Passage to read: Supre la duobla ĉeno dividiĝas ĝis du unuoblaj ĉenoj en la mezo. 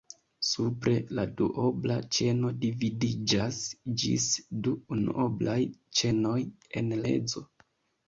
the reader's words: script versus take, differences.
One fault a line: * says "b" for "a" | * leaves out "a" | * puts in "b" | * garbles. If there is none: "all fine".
* leaves out "la"